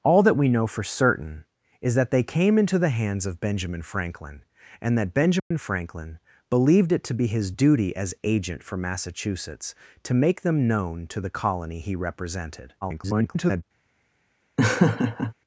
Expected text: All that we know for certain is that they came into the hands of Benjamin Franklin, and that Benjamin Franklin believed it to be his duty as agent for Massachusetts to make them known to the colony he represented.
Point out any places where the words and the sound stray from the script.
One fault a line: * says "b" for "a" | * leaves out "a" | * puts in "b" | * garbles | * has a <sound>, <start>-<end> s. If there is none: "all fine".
* has a dropout, 5.4-5.5 s
* garbles
* has a laugh, 14.6-15.3 s